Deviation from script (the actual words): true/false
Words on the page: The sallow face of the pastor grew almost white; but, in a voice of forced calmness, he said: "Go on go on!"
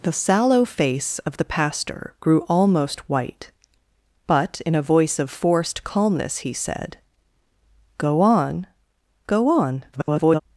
true